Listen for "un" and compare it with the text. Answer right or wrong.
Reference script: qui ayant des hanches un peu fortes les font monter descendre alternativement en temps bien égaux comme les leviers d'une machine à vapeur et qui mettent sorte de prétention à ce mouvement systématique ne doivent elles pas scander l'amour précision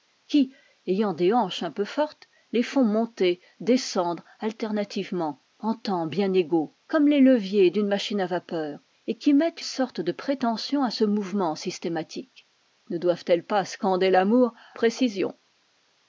right